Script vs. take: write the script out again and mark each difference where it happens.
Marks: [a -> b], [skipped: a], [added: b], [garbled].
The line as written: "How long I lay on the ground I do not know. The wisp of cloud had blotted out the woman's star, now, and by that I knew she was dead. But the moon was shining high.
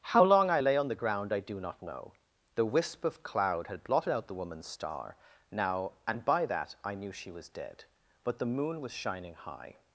"How long I lay on the ground I do not know. The wisp of cloud had blotted out the woman's star, now, and by that I knew she was dead. But the moon was shining high.